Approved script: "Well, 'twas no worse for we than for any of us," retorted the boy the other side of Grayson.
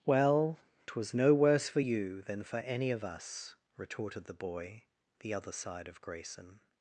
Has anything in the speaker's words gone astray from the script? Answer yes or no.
yes